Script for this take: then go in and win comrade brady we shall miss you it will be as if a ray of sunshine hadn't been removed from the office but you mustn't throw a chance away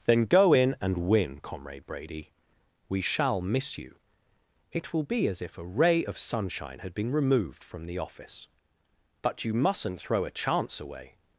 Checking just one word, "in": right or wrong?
right